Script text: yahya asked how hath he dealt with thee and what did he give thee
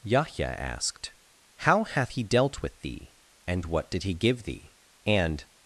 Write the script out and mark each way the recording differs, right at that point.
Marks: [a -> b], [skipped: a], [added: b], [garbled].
yahya asked how hath he dealt with thee and what did he give thee [added: and]